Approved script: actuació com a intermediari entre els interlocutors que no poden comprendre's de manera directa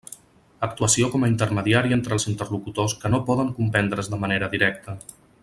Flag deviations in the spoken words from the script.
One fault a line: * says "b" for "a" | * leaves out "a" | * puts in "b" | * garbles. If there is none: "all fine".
all fine